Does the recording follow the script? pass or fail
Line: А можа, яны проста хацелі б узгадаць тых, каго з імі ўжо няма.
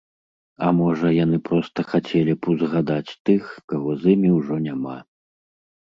pass